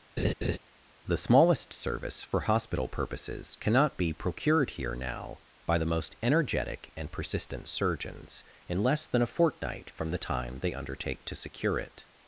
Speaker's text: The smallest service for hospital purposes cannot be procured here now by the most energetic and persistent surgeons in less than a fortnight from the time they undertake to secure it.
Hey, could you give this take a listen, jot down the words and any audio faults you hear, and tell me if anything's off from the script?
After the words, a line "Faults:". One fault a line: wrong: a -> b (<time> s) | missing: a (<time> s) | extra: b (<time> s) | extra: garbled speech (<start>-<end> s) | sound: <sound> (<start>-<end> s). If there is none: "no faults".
The smallest service for hospital purposes cannot be procured here now by the most energetic and persistent surgeons in less than a fortnight from the time they undertake to secure it.
Faults:
sound: laugh (0.2-0.6 s)